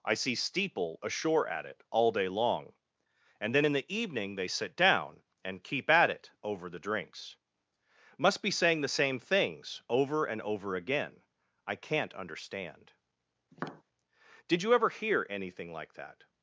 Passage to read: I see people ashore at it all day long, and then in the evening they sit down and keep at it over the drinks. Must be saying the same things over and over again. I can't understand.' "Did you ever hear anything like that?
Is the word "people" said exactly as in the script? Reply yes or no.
no